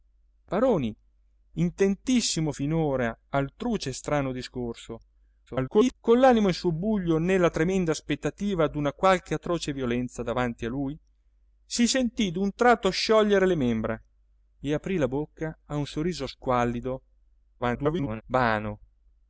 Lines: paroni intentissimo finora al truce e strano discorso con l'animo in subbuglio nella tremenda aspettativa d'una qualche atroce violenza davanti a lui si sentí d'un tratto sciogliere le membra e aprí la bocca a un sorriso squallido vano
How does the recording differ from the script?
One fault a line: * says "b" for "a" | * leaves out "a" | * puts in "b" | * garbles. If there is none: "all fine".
* garbles
* garbles